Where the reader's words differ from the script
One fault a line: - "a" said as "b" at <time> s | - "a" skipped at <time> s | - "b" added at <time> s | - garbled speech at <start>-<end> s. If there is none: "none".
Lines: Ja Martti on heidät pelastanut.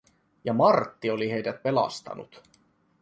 - "on" said as "oli" at 1.1 s